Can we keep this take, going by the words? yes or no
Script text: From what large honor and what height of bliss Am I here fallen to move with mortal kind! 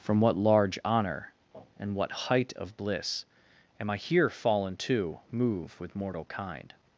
yes